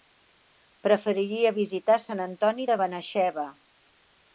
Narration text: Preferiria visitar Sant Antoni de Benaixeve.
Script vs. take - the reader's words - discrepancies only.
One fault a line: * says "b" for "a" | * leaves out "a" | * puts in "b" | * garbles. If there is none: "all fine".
all fine